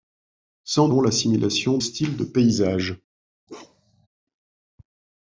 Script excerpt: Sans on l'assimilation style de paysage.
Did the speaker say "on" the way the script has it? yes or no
yes